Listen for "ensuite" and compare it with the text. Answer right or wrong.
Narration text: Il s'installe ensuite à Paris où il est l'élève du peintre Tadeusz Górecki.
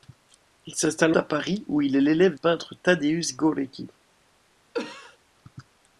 wrong